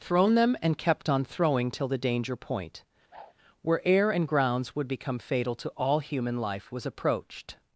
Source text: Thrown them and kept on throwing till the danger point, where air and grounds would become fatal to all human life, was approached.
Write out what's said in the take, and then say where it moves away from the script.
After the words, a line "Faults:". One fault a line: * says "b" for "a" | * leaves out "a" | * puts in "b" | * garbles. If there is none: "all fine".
Thrown them and kept on throwing till the danger point, where air and grounds would become fatal to all human life, was approached.
Faults:
all fine